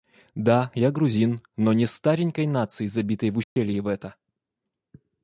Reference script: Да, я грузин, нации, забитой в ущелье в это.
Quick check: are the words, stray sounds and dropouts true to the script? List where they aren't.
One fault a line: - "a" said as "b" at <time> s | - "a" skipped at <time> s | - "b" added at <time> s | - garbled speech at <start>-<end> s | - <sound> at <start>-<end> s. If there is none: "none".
- "но не старенькой" added at 1.6 s
- dropout at 3.4-3.6 s